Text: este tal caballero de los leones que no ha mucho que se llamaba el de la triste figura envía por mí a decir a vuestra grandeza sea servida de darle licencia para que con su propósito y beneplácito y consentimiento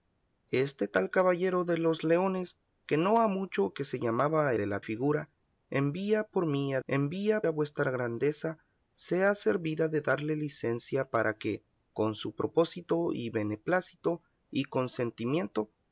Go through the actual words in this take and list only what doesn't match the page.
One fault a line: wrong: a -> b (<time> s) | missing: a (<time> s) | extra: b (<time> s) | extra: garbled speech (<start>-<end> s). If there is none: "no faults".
missing: el (4.5 s)
missing: triste (4.8 s)
wrong: decir -> envía (6.9 s)